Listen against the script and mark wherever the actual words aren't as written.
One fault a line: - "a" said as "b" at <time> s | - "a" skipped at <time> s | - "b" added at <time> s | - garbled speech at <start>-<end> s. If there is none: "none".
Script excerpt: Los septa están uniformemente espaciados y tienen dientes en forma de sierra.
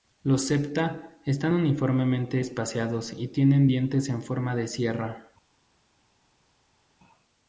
none